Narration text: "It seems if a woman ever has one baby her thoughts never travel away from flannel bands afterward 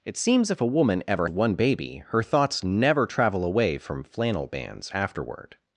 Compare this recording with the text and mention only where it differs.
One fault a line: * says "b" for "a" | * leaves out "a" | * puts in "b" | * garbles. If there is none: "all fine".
* leaves out "has"